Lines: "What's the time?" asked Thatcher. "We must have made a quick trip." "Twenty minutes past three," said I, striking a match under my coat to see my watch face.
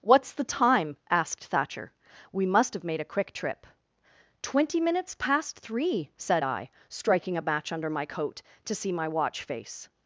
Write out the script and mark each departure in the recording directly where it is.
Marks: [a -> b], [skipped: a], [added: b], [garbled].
"What's the time?" asked Thatcher. "We must have made a quick trip." "Twenty minutes past three," said I, striking a match under my coat to see my watch face.